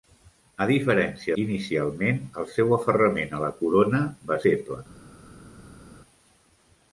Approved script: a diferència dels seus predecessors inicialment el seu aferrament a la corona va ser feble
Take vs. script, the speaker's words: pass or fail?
fail